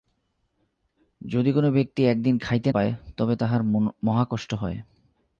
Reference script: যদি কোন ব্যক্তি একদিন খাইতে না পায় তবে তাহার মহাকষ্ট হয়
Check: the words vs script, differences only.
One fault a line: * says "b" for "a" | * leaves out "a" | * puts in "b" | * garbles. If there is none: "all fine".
* leaves out "না"